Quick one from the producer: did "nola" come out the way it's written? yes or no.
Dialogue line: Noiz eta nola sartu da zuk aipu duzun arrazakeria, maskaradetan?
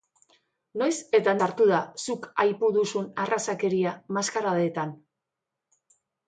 no